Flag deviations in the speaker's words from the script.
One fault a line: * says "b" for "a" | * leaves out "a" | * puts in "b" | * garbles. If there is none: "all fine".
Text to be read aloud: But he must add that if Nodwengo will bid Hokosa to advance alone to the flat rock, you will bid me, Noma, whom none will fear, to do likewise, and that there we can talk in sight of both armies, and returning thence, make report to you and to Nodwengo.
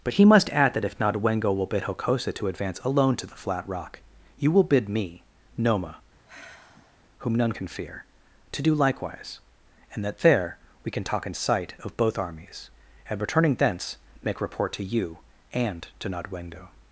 * says "can" for "will"